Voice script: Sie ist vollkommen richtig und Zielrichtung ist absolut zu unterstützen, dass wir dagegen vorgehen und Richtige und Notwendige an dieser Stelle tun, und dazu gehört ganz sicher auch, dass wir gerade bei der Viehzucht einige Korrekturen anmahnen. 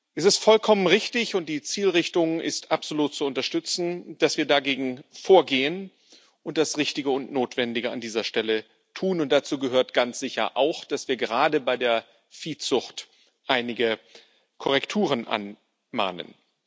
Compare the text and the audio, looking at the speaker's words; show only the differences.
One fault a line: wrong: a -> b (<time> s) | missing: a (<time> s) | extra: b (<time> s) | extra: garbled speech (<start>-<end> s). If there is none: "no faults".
wrong: Sie -> Es (0.1 s)
extra: die (1.5 s)
extra: das (6.6 s)